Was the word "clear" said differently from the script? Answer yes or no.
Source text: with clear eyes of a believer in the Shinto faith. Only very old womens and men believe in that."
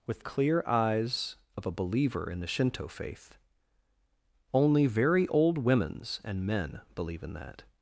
no